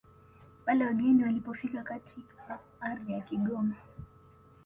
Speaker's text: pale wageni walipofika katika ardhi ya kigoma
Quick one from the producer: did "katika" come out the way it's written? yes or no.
yes